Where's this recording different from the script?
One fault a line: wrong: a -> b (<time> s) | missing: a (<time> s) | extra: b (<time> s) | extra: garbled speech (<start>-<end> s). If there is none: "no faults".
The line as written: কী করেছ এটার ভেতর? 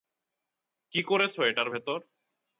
no faults